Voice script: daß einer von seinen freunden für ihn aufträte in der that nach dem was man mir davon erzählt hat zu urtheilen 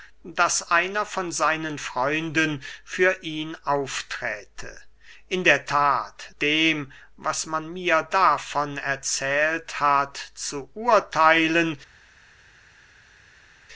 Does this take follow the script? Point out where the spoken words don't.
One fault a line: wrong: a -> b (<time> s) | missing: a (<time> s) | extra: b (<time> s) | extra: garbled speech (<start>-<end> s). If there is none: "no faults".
missing: nach (6.3 s)